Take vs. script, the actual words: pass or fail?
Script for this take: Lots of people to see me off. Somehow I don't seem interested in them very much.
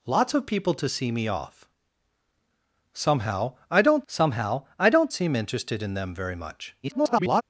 fail